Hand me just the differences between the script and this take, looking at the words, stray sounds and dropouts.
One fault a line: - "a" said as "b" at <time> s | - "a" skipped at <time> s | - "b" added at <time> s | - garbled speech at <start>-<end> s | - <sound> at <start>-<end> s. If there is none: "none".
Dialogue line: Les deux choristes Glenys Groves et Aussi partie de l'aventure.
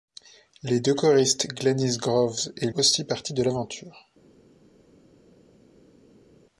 none